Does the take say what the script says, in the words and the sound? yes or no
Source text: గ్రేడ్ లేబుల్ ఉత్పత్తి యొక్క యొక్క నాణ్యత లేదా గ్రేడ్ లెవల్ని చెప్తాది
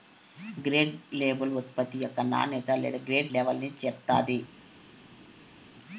no